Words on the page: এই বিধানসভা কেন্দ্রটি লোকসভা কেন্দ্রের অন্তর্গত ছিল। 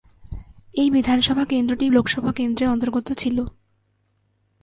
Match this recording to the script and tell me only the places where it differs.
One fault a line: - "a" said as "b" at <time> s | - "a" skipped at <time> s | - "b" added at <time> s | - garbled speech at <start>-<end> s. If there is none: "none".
none